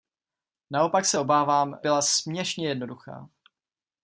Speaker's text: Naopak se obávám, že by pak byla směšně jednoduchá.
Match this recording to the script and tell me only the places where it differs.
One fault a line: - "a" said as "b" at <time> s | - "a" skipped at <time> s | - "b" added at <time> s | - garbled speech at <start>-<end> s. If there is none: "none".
- "že by pak" skipped at 1.8 s